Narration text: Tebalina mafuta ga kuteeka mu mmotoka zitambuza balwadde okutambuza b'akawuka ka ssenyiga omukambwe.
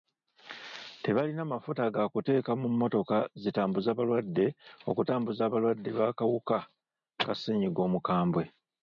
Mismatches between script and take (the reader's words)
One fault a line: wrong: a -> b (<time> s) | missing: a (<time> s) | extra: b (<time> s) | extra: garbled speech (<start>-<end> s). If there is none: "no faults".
extra: abalwadde (5.4 s)